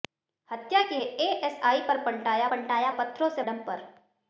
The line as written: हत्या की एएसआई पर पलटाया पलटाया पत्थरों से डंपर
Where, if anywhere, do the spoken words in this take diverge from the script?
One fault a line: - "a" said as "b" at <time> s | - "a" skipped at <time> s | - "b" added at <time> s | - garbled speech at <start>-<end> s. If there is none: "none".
none